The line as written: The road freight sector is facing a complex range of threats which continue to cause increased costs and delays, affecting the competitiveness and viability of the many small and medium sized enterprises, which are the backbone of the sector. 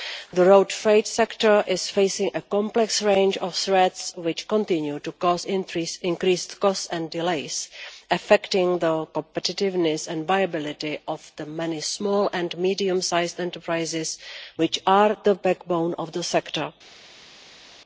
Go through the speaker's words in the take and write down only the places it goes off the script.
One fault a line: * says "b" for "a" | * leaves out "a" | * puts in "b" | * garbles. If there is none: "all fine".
all fine